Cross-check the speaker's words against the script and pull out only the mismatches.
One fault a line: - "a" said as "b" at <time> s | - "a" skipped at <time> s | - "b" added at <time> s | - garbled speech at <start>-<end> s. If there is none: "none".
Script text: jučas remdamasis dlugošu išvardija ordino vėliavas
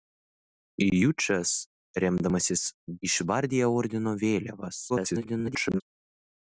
- "dlugošu" skipped at 2.6 s
- garbled speech at 4.9-5.8 s